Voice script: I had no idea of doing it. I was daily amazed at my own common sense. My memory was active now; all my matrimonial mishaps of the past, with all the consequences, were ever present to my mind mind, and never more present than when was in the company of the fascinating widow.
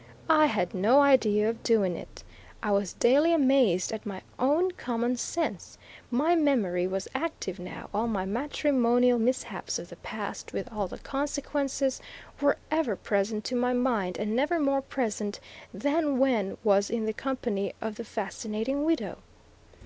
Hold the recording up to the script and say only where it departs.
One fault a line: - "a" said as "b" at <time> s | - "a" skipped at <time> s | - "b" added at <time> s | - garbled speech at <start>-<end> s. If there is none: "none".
- "mind" skipped at 14.2 s